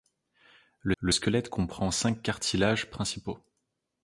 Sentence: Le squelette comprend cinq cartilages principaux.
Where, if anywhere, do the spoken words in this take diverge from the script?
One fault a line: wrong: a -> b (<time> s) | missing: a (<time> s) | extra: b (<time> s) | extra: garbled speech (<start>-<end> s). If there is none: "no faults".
extra: le (1.0 s)